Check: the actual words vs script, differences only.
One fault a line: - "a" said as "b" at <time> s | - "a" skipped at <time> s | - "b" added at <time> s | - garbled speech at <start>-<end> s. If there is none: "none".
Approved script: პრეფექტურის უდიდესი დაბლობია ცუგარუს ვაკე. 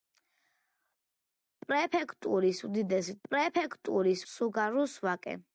- "დაბლობია" said as "პრეფექტურის" at 3.3 s